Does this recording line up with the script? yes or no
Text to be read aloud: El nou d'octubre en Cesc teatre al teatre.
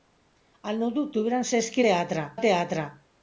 yes